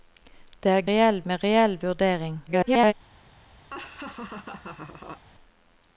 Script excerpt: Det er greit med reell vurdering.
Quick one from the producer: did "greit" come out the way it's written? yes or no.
no